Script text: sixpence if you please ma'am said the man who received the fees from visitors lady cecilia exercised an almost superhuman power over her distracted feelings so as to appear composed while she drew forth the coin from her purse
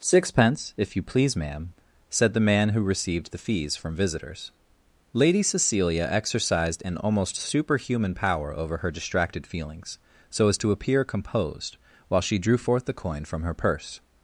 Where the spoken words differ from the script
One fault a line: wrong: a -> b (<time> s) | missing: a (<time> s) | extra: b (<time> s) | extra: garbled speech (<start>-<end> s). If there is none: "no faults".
no faults